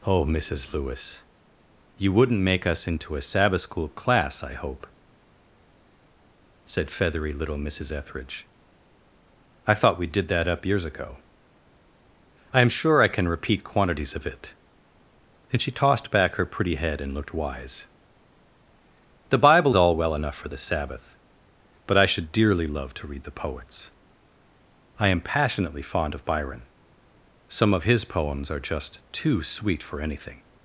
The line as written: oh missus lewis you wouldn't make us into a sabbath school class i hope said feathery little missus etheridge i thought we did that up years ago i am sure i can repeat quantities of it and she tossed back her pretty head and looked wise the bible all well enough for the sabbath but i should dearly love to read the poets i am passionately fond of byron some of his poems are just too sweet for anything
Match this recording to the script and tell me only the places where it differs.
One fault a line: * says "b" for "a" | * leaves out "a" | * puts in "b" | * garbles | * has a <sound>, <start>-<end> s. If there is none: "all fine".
all fine